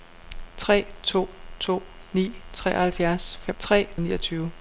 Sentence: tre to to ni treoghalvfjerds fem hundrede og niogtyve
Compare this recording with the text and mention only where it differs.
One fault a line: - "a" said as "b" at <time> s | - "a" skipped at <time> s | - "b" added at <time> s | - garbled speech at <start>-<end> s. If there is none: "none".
- "hundrede" said as "tre" at 3.6 s